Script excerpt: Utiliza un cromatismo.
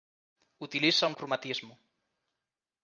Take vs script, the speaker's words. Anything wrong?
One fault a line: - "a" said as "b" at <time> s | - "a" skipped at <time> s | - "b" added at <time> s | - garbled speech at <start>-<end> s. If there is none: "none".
none